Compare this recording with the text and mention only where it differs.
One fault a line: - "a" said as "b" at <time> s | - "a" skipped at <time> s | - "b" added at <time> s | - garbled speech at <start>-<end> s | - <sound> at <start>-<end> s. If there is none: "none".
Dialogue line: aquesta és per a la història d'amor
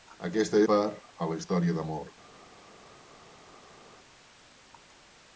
- "és" skipped at 0.6 s